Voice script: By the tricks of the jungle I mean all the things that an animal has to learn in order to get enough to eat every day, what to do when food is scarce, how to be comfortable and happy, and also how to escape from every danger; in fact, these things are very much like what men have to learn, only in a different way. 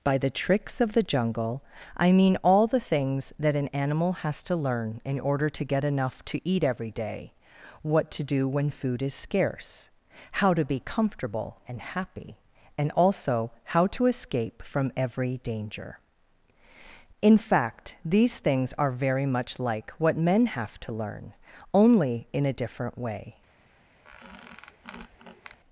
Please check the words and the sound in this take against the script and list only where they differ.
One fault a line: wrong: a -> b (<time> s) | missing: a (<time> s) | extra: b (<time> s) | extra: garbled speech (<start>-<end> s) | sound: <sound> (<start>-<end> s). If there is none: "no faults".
sound: squeak (24.0-25.6 s)